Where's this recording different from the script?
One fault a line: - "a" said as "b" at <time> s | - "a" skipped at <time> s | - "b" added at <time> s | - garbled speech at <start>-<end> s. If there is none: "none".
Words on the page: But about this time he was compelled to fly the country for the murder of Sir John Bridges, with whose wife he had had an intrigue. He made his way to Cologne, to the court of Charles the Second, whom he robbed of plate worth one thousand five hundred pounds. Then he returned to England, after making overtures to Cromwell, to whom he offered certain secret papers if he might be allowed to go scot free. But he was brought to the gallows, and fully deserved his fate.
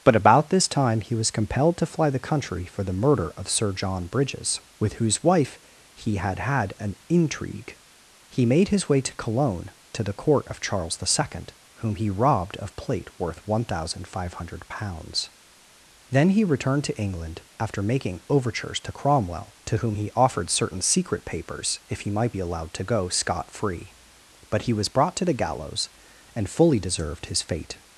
none